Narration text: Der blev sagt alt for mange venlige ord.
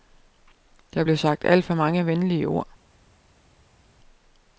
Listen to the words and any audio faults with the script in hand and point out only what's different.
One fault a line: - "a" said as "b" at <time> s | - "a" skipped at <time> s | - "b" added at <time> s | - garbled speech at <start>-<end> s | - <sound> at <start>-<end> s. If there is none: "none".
none